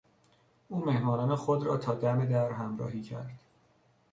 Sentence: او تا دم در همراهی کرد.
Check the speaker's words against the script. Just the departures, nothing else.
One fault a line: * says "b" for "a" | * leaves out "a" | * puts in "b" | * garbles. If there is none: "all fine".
* puts in "مهمانان خود را"